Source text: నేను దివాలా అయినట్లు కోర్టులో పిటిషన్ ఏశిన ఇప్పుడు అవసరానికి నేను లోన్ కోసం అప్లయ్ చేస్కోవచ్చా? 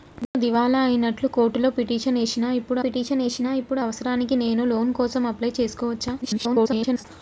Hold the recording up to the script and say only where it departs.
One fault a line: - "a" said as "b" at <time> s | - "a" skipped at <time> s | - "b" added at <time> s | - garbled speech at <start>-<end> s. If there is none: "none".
- "పిటిషన్ ఏశిన ఇప్పుడు" added at 2.8 s
- garbled speech at 6.2-7.0 s